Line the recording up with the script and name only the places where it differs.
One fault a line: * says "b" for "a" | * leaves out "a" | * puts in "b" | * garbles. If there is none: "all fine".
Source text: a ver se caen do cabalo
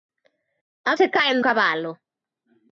* leaves out "ver"
* leaves out "do"